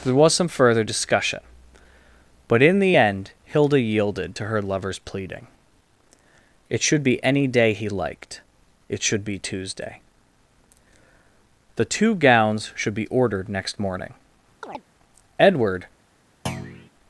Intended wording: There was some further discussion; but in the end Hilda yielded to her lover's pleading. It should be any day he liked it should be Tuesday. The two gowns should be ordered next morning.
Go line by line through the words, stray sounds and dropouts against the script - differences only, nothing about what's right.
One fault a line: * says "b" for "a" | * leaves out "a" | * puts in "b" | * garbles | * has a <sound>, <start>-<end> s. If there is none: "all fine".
* has a chirp, 14.6-14.8 s
* puts in "Edward"
* has a thud, 16.5-16.9 s